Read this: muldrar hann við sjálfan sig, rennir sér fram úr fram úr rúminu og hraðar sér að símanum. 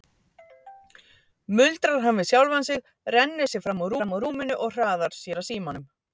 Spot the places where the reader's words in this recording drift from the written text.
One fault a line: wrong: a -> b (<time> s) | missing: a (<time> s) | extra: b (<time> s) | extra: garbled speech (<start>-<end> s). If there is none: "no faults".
no faults